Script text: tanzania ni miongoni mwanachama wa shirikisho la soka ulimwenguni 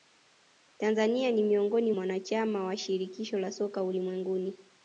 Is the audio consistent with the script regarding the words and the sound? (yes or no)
yes